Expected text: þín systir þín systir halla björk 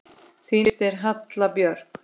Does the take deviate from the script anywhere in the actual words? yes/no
yes